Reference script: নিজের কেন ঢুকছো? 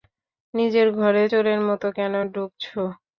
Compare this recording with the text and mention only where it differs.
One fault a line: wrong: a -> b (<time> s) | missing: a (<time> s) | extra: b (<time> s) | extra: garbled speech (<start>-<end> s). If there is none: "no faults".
extra: ঘরে চোরের মতো (1.0 s)